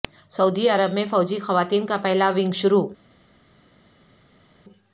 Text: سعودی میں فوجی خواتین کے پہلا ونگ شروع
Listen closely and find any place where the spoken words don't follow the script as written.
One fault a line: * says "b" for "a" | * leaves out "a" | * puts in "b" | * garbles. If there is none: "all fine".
* puts in "عرب"
* says "کا" for "کے"